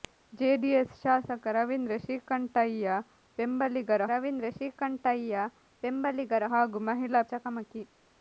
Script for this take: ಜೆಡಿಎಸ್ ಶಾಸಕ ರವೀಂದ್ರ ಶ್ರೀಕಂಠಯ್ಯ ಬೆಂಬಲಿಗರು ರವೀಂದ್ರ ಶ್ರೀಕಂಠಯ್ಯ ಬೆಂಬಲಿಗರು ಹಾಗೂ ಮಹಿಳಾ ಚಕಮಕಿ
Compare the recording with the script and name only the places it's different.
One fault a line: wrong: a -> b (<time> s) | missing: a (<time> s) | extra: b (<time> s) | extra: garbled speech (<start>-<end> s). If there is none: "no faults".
no faults